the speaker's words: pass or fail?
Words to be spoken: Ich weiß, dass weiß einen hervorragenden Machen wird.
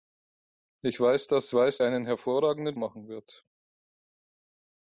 pass